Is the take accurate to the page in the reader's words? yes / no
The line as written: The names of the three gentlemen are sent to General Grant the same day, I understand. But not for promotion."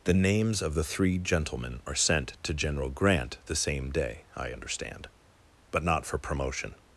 yes